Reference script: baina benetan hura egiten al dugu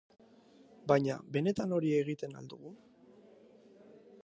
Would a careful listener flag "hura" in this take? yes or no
yes